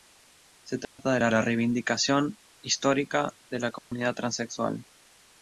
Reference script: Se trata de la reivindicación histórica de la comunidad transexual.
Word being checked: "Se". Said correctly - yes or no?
yes